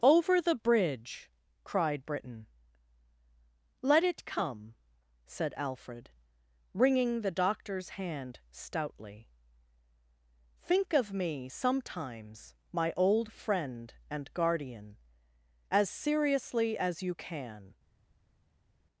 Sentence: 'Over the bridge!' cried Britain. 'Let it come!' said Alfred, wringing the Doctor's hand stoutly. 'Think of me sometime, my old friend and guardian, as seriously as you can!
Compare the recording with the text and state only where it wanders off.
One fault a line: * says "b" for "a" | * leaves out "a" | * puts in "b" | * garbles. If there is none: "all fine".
* says "sometimes" for "sometime"